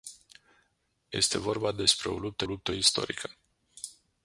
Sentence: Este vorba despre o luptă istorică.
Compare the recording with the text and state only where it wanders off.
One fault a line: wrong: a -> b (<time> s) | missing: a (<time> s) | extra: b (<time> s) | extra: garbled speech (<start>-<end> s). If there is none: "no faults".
extra: luptă (2.4 s)